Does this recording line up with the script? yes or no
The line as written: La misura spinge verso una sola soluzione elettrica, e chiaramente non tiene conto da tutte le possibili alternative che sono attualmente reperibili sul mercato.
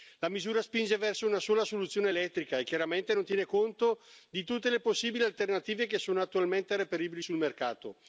no